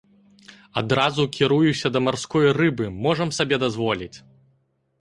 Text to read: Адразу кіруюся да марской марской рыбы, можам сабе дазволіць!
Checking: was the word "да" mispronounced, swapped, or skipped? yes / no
no